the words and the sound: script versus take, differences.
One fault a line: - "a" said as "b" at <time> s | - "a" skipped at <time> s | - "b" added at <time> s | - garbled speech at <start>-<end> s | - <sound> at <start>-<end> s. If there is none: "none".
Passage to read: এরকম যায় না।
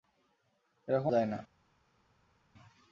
none